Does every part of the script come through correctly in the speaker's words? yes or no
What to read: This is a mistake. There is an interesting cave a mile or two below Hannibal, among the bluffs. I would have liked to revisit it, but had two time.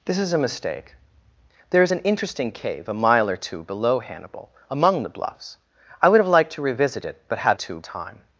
yes